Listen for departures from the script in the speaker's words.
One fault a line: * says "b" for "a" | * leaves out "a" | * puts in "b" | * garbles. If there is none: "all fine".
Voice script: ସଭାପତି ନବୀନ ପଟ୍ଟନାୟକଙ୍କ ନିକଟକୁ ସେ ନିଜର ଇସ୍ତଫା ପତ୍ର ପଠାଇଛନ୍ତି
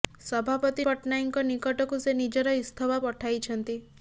* leaves out "ନବୀନ"
* leaves out "ପତ୍ର"